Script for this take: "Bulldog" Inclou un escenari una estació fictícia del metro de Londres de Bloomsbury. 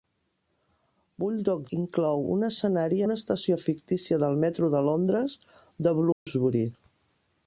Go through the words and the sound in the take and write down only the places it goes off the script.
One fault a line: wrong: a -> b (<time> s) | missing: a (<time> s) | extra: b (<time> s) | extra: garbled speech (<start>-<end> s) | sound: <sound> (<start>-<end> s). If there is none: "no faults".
sound: dropout (6.1-6.3 s)